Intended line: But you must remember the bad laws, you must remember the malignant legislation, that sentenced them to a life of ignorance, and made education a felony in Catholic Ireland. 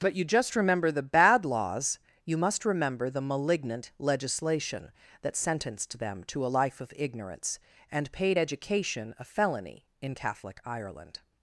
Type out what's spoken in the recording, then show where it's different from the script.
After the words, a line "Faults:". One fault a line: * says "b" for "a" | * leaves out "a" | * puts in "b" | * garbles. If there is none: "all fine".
But you just remember the bad laws, you must remember the malignant legislation, that sentenced them to a life of ignorance, and paid education a felony in Catholic Ireland.
Faults:
* says "just" for "must"
* says "paid" for "made"